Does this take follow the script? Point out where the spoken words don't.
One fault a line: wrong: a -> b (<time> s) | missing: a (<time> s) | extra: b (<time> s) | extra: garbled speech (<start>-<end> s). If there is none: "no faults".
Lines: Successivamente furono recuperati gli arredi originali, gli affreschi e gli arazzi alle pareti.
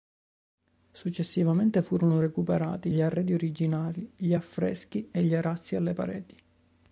no faults